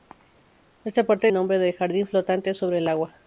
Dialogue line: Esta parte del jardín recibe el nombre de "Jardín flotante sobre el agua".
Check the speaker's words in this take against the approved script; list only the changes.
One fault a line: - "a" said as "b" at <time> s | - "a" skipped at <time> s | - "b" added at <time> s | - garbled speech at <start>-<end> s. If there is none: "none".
- "del jardín recibe" skipped at 1.3 s